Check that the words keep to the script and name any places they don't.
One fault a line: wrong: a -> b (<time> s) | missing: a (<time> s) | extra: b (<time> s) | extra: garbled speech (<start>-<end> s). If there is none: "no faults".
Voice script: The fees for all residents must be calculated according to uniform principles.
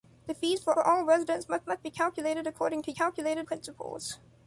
extra: for (0.7 s)
extra: must (1.7 s)
wrong: uniform -> calculated (2.9 s)